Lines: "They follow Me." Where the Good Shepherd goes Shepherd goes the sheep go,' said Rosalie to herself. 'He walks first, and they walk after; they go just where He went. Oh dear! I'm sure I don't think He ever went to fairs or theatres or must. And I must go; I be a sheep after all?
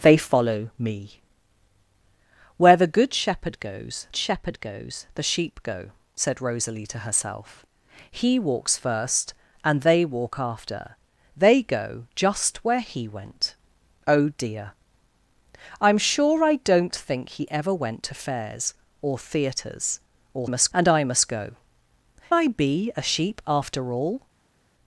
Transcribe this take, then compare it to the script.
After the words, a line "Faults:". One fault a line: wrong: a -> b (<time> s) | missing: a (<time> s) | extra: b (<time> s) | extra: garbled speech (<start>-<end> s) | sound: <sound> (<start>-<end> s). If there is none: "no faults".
"They follow Me." Where the Good Shepherd goes Shepherd goes the sheep go,' said Rosalie to herself. 'He walks first, and they walk after; they go just where He went. Oh dear! I'm sure I don't think He ever went to fairs or theatres or must. And I must go; I be a sheep after all?
Faults:
no faults